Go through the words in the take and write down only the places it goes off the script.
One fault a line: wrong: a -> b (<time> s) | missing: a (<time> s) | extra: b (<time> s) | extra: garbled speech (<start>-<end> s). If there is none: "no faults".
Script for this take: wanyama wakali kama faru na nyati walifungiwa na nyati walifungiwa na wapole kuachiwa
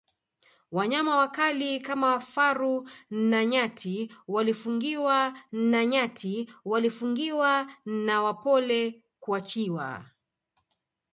no faults